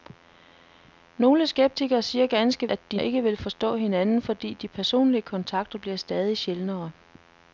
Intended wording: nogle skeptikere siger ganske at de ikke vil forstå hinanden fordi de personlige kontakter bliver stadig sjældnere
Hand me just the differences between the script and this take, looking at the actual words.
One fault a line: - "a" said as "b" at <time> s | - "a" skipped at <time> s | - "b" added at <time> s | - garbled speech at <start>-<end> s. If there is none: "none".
none